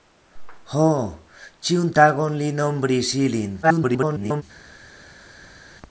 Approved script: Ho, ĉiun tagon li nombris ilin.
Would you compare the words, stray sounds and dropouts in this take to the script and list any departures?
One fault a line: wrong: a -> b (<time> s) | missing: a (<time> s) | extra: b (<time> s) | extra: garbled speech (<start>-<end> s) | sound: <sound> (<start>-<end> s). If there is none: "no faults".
extra: garbled speech (3.6-4.4 s)